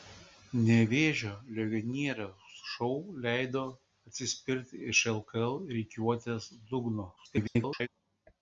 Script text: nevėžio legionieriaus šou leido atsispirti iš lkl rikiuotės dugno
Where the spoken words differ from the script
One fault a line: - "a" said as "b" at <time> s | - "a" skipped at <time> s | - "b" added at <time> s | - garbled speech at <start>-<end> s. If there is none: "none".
- garbled speech at 7.2-7.9 s